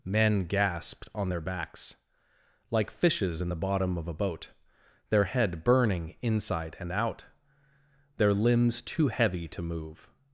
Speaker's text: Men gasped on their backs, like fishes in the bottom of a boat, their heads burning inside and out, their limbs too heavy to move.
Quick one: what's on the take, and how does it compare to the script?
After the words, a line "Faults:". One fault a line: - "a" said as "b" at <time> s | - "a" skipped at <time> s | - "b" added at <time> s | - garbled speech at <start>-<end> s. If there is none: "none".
Men gasped on their backs, like fishes in the bottom of a boat, their head burning inside and out, their limbs too heavy to move.
Faults:
- "heads" said as "head" at 5.2 s